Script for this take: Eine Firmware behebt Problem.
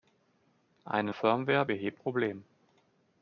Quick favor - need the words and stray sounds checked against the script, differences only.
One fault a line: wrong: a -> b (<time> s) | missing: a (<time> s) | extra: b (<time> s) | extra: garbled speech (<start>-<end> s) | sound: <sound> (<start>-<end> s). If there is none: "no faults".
no faults